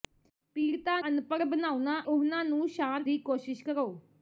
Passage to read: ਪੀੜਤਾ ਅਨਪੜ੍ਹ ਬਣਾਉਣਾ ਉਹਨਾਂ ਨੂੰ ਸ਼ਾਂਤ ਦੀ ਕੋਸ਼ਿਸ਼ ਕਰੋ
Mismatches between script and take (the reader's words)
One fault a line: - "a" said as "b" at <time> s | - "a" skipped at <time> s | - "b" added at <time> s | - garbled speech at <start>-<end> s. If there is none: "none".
none